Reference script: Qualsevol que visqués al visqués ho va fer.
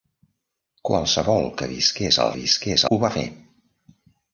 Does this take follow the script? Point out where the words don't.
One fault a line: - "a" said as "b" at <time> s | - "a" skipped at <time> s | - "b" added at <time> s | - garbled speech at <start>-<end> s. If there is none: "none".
none